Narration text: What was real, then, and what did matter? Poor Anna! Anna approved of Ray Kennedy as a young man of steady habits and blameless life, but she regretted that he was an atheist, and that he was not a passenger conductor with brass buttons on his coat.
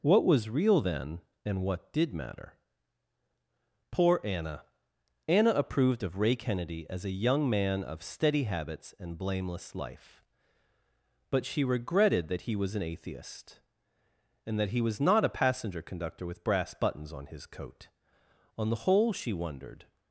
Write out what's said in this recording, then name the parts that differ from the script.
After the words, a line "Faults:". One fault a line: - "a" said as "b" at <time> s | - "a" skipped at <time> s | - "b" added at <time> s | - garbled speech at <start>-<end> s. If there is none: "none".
What was real, then, and what did matter? Poor Anna! Anna approved of Ray Kennedy as a young man of steady habits and blameless life, but she regretted that he was an atheist, and that he was not a passenger conductor with brass buttons on his coat. On the whole, she wondered
Faults:
- "On the whole she wondered" added at 18.6 s